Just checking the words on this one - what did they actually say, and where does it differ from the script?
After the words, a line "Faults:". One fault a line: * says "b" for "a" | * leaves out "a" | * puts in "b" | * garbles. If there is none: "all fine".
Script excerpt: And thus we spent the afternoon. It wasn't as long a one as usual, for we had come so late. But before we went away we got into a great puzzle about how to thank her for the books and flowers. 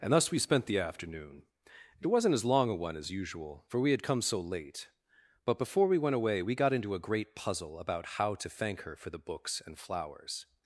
And thus we spent the afternoon. It wasn't as long a one as usual, for we had come so late. But before we went away we got into a great puzzle about how to thank her for the books and flowers.
Faults:
all fine